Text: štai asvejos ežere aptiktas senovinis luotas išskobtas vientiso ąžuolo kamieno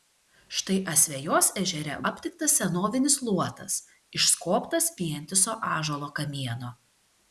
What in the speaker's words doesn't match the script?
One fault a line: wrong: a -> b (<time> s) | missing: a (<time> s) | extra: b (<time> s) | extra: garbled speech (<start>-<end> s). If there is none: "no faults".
no faults